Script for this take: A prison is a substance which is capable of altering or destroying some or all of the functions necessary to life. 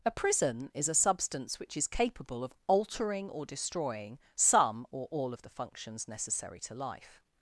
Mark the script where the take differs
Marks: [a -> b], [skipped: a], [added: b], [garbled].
A prison is a substance which is capable of altering or destroying some or all of the functions necessary to life.